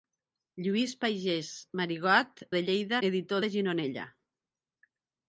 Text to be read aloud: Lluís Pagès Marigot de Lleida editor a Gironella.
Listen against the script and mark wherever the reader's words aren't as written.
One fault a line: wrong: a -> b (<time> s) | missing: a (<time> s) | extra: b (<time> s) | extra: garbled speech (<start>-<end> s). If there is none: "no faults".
no faults